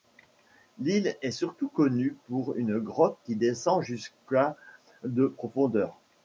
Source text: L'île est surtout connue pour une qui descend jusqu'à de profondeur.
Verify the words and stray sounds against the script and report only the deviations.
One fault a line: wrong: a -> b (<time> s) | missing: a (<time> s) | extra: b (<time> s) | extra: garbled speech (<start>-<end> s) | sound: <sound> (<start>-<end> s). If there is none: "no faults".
extra: grotte (2.8 s)